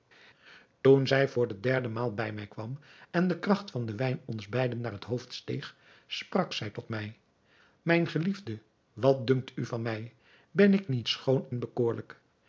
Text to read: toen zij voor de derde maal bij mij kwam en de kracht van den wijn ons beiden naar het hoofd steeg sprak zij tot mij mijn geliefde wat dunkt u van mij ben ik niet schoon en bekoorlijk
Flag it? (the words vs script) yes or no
no